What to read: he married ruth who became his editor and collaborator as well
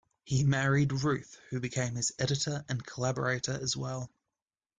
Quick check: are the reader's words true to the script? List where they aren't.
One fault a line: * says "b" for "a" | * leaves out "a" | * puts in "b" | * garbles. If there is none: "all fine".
all fine